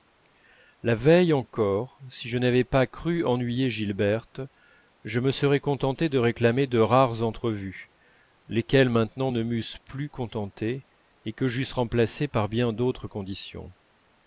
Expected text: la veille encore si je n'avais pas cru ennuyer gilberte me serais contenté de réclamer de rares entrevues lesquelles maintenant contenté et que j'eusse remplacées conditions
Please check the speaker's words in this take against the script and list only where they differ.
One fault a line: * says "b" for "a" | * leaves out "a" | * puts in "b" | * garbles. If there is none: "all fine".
* puts in "je"
* puts in "ne m'eussent plus"
* puts in "par bien d'autres"